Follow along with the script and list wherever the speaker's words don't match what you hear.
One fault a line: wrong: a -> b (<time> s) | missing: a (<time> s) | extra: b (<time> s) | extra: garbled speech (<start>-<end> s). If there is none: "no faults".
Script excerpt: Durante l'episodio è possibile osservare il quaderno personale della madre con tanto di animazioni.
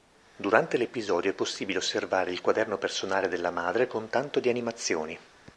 no faults